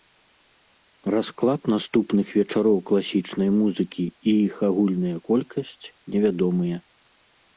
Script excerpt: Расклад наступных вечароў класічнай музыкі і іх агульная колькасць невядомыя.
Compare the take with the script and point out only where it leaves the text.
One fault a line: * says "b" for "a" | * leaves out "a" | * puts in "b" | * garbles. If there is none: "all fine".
all fine